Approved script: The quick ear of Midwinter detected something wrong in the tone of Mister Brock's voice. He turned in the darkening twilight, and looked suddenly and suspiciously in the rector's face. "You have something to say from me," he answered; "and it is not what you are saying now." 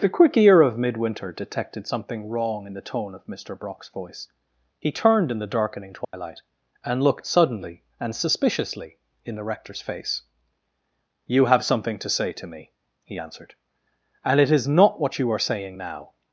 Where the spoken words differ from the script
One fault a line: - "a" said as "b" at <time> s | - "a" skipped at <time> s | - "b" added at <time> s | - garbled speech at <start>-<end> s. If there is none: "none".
- "from" said as "to" at 12.3 s